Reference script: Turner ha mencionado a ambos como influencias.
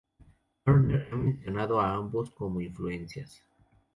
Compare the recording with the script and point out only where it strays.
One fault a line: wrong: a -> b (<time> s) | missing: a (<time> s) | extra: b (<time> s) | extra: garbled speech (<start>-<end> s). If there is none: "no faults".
no faults